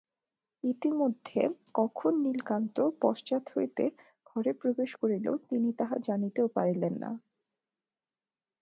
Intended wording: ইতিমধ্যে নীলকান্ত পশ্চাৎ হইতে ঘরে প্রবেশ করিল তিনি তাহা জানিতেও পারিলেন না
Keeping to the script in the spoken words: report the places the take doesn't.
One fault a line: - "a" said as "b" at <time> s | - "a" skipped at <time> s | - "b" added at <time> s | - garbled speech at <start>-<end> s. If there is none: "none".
- "কখন" added at 1.7 s